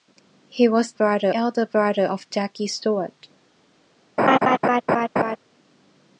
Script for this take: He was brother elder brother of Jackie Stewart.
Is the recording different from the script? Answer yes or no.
no